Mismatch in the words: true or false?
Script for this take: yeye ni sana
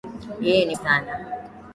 false